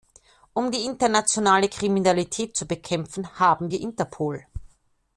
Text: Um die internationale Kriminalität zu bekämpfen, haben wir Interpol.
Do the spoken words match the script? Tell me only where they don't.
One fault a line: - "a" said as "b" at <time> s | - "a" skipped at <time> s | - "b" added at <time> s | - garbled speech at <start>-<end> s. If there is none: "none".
none